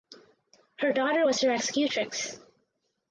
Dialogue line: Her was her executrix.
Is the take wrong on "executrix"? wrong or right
right